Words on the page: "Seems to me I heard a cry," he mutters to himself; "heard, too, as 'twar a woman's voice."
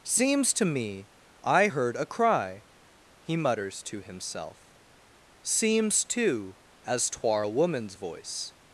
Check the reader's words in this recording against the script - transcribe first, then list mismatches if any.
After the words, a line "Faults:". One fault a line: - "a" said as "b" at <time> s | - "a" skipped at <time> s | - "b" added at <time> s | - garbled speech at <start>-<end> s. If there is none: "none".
"Seems to me I heard a cry," he mutters to himself; "seems, too, as 'twar a woman's voice."
Faults:
- "heard" said as "seems" at 5.4 s